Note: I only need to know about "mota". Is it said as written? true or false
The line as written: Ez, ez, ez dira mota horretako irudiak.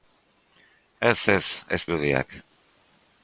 false